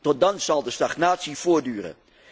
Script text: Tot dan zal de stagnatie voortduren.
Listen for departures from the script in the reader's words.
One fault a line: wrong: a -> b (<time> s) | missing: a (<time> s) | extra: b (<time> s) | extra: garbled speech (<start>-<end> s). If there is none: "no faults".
no faults